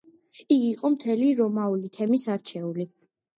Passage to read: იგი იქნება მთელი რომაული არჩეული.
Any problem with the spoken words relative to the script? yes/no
yes